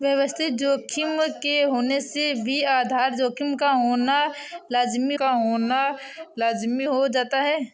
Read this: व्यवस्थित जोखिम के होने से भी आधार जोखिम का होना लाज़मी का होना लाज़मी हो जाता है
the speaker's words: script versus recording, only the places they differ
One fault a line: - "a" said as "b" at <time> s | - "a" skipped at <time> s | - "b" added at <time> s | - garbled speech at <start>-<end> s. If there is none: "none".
none